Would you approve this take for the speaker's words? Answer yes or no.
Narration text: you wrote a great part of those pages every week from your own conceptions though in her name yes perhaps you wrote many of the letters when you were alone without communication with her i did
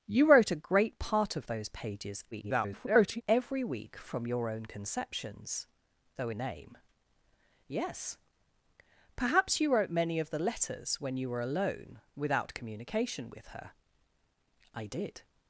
no